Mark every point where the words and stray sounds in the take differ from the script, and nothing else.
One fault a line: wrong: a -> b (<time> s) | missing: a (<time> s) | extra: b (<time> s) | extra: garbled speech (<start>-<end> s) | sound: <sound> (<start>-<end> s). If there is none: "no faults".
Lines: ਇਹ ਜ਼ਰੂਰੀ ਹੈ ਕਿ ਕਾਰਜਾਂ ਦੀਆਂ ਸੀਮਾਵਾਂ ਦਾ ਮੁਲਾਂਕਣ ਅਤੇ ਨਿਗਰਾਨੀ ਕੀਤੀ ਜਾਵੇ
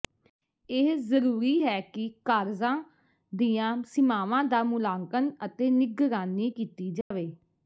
sound: dropout (7.0-7.1 s)